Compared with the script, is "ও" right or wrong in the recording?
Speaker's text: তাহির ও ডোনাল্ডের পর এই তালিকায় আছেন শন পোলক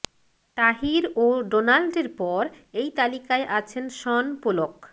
right